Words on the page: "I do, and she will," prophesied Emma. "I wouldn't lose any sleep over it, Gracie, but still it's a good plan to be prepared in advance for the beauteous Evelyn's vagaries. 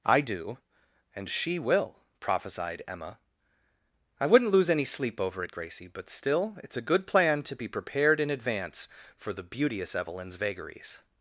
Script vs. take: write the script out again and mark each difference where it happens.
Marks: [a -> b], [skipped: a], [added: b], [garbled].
"I do, and she will," prophesied Emma. "I wouldn't lose any sleep over it, Gracie, but still it's a good plan to be prepared in advance for the beauteous Evelyn's vagaries.